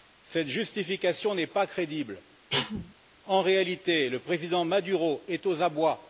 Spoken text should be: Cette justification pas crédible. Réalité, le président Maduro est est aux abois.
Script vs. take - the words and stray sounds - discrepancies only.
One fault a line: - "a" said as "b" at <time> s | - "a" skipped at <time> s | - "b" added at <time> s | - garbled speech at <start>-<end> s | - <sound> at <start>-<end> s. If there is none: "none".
- "n'est" added at 1.4 s
- cough at 2.5-2.9 s
- "En" added at 3.2 s
- "est" skipped at 5.4 s